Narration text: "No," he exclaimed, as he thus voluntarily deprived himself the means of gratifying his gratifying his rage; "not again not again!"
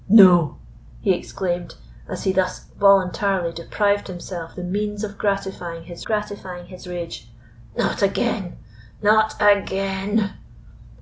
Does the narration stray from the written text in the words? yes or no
no